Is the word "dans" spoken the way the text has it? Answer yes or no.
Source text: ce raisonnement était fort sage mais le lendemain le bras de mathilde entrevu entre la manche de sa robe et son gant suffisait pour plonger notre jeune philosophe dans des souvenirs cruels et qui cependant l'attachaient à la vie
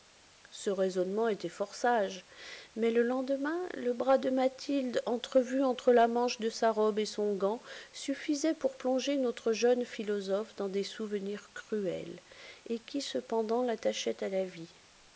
yes